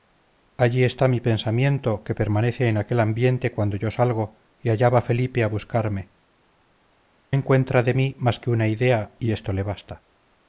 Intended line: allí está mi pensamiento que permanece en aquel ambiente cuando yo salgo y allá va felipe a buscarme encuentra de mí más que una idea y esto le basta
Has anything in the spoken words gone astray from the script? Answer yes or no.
no